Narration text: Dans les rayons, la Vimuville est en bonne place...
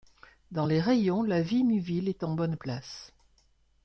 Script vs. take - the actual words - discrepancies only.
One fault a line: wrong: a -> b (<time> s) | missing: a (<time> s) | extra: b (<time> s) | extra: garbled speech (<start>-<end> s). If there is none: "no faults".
no faults